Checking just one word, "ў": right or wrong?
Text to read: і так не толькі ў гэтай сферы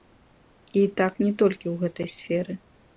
right